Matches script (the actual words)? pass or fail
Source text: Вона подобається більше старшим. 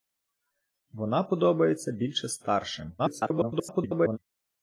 fail